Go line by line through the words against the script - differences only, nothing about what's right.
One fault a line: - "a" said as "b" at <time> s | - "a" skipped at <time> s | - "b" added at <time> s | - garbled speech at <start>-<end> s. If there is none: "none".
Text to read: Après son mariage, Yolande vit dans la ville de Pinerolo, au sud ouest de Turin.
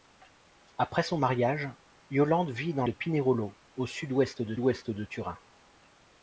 - "la ville" skipped at 2.9 s
- "ouest de" added at 4.6 s